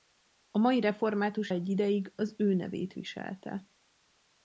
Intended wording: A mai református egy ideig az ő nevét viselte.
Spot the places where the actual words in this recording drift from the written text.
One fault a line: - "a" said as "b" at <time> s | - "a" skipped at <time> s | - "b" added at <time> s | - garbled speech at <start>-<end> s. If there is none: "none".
none